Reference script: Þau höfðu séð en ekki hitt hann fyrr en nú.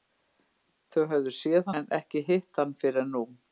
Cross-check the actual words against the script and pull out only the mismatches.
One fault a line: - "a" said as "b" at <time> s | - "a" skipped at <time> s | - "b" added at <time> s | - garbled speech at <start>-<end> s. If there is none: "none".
none